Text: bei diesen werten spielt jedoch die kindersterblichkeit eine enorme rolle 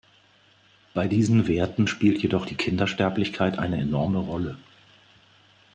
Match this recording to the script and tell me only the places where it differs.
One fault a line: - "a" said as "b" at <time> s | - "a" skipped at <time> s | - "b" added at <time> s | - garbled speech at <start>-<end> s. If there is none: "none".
none